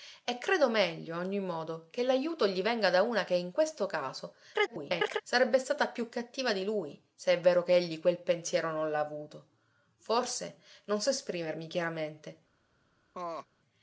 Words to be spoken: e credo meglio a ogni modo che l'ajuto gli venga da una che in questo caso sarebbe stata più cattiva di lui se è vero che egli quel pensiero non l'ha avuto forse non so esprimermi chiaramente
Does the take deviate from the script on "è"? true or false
false